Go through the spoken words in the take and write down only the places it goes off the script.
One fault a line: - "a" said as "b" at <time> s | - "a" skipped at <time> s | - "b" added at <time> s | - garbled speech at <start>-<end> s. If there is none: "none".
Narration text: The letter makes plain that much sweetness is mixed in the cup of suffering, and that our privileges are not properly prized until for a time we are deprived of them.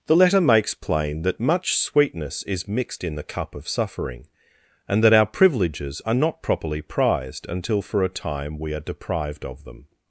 none